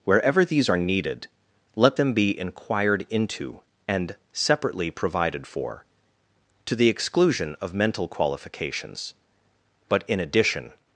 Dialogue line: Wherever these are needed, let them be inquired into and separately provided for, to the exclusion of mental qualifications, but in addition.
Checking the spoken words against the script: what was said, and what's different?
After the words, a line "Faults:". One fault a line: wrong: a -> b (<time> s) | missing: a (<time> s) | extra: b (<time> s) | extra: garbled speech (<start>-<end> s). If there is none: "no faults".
Wherever these are needed, let them be inquired into and separately provided for, to the exclusion of mental qualifications, but in addition.
Faults:
no faults